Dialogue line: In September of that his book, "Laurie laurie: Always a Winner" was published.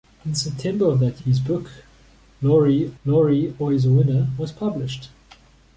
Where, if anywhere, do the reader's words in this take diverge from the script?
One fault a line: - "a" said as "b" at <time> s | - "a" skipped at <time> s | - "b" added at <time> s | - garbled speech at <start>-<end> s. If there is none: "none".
none